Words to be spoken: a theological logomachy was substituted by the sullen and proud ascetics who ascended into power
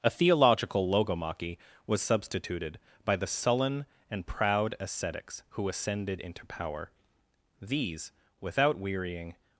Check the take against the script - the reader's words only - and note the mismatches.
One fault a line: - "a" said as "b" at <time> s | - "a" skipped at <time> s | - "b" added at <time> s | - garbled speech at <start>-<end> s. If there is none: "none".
- "these without wearying" added at 7.6 s